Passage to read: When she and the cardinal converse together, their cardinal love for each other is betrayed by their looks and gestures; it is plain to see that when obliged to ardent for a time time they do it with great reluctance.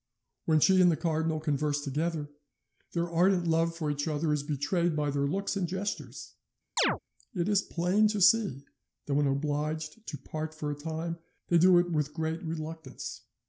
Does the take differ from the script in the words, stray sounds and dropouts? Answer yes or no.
yes